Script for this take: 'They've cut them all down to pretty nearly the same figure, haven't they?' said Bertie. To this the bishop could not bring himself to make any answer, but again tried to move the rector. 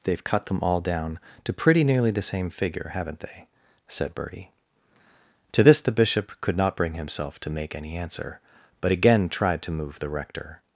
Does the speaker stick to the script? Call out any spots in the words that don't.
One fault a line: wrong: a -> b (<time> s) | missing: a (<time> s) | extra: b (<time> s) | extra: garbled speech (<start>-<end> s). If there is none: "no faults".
no faults